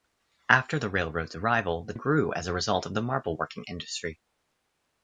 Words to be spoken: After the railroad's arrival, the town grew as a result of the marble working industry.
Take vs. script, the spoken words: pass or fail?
fail